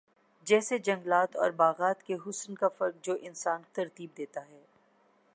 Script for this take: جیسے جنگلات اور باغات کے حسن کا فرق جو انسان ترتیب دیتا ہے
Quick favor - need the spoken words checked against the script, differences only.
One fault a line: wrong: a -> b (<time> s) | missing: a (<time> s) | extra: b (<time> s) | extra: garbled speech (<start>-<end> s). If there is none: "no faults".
no faults